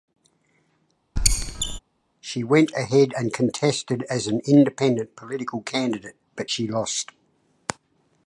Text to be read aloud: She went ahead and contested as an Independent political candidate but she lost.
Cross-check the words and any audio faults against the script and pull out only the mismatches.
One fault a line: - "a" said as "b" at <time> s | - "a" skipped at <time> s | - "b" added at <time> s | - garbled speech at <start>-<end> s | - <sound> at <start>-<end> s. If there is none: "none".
- squeak at 1.2-1.8 s